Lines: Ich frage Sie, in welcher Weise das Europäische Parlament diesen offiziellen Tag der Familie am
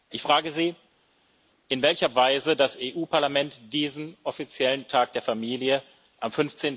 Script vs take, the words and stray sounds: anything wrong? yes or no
no